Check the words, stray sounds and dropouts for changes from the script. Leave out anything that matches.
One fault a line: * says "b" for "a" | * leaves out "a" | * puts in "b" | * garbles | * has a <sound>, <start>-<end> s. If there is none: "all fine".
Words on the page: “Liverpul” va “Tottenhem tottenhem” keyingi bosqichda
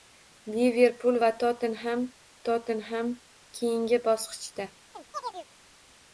* has a chirp, 4.9-5.5 s